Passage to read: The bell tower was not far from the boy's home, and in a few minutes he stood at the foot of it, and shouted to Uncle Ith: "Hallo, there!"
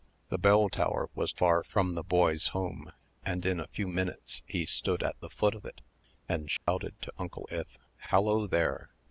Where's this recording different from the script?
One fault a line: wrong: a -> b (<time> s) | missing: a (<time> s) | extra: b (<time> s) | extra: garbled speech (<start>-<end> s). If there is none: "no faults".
missing: not (1.4 s)